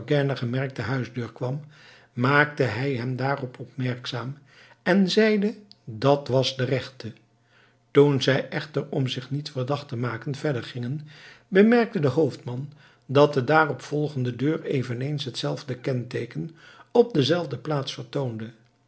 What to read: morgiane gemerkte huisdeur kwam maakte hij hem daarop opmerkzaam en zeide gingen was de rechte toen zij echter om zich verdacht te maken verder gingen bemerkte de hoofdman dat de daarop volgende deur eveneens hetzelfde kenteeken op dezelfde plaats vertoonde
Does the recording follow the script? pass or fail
fail